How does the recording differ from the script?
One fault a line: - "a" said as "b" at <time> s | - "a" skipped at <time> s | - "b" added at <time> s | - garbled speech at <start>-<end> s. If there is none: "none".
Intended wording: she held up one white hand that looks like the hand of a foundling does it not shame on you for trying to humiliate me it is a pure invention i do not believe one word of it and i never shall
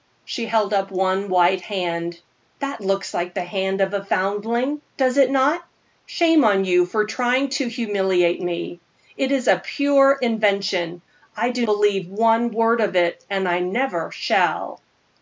- "not" skipped at 11.7 s